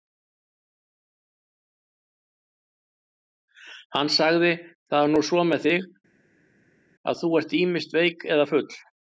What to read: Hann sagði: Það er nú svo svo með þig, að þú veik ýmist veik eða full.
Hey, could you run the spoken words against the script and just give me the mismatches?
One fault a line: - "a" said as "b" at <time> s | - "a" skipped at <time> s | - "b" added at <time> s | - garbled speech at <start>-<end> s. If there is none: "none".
- "svo" skipped at 5.4 s
- "veik" said as "ert" at 7.4 s